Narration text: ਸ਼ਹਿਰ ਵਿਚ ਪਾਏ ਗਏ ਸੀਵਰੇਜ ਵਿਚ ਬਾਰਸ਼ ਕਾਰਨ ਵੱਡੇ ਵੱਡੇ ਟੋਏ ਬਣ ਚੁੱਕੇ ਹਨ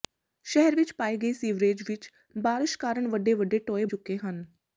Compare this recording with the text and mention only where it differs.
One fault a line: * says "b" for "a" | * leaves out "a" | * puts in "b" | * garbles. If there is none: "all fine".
* leaves out "ਬਣ"